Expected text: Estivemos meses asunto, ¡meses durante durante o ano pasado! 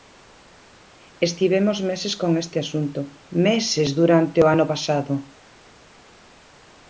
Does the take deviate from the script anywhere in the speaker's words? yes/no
yes